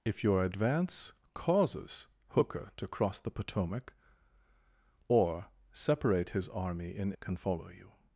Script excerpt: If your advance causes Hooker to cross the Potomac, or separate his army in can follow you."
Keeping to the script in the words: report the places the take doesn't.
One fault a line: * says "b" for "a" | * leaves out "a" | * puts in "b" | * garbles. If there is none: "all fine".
all fine